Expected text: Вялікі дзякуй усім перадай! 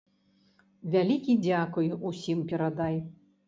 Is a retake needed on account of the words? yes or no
no